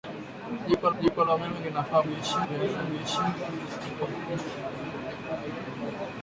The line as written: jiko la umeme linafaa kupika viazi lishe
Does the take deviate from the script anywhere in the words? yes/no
yes